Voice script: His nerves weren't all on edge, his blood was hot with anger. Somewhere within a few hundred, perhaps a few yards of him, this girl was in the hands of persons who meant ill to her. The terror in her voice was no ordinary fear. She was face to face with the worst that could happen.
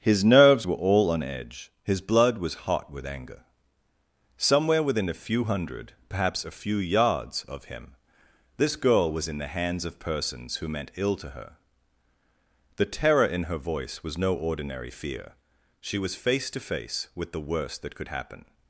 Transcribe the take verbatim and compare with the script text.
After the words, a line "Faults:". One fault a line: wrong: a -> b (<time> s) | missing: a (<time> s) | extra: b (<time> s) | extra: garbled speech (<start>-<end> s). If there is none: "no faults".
His nerves were all on edge, his blood was hot with anger. Somewhere within a few hundred, perhaps a few yards of him, this girl was in the hands of persons who meant ill to her. The terror in her voice was no ordinary fear. She was face to face with the worst that could happen.
Faults:
wrong: weren't -> were (0.7 s)